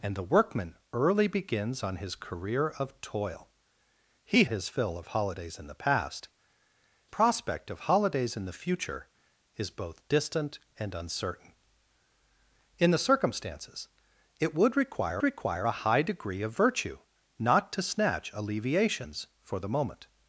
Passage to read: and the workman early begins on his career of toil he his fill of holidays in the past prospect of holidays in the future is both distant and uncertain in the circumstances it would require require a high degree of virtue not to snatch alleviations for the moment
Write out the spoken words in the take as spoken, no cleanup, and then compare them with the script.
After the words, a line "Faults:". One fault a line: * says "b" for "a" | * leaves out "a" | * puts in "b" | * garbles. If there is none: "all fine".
and the workman early begins on his career of toil he his fill of holidays in the past prospect of holidays in the future is both distant and uncertain in the circumstances it would require require a high degree of virtue not to snatch alleviations for the moment
Faults:
all fine